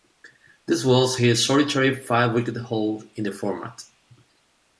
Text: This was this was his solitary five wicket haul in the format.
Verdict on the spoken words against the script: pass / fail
fail